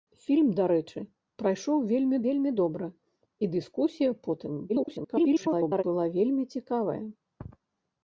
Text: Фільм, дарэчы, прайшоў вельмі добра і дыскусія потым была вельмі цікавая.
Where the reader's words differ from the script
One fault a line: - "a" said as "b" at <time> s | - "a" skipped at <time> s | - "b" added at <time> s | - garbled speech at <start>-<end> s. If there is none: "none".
- "вельмі" added at 2.3 s
- garbled speech at 4.7-5.8 s